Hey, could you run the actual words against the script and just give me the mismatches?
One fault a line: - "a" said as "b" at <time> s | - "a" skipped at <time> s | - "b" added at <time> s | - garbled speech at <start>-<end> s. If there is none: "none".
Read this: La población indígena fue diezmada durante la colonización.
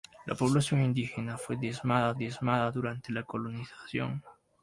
- "diezmada" added at 2.1 s